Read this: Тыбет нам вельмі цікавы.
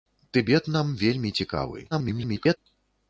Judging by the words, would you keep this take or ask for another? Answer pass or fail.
fail